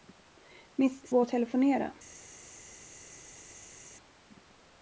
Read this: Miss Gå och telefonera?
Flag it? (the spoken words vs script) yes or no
no